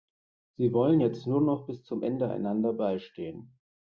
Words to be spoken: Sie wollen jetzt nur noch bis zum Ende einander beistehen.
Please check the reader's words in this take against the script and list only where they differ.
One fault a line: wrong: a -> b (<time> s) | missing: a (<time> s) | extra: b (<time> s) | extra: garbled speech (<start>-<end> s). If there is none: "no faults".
no faults